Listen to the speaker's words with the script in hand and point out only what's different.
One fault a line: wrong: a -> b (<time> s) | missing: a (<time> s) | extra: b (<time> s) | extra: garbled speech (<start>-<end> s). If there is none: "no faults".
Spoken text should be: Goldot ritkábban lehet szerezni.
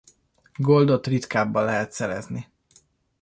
no faults